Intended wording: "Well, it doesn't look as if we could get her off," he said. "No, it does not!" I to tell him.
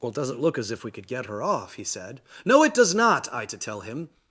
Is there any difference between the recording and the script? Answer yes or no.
no